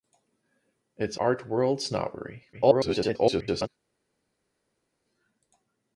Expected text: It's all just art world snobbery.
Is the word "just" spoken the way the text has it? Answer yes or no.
no